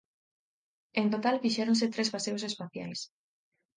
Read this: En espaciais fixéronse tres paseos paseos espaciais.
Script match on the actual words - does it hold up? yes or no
no